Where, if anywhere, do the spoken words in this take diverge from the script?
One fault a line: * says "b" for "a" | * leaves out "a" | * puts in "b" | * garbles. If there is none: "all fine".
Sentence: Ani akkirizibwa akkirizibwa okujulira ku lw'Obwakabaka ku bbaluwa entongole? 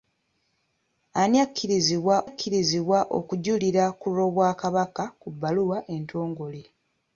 all fine